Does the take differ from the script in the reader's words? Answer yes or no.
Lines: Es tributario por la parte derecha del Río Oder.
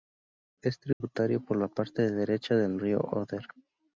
no